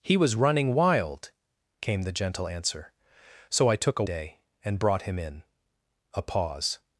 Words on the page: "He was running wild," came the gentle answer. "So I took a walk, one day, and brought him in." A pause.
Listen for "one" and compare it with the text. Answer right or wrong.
wrong